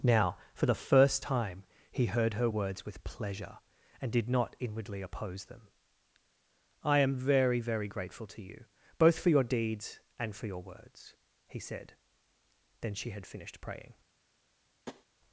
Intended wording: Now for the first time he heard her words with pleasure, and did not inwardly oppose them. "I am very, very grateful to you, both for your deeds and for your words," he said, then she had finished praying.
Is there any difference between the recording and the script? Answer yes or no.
no